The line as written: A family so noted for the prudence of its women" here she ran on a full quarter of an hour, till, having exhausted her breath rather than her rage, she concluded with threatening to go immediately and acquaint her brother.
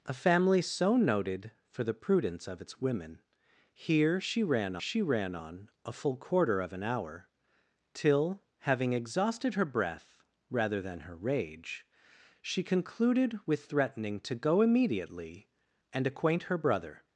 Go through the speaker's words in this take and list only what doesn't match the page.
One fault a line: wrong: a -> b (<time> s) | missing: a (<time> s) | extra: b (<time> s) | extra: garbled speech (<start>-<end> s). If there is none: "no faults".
extra: she ran (4.8 s)